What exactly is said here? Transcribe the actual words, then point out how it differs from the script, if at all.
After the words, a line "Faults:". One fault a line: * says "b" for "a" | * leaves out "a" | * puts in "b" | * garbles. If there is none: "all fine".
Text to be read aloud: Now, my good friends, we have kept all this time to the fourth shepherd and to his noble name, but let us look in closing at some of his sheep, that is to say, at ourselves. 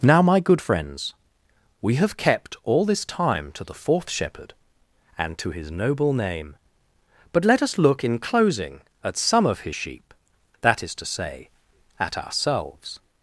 Now, my good friends, we have kept all this time to the fourth shepherd and to his noble name, but let us look in closing at some of his sheep, that is to say, at ourselves.
Faults:
all fine